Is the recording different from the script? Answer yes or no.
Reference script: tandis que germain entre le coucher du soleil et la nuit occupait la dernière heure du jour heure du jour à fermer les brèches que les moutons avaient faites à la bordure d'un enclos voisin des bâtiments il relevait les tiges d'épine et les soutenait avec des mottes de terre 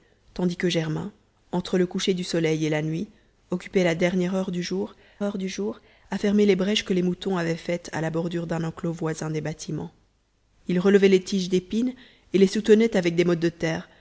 no